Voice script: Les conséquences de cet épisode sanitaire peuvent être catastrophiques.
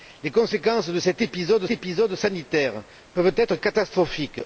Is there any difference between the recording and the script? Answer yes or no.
yes